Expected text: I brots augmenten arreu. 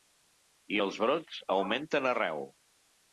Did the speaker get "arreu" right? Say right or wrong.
right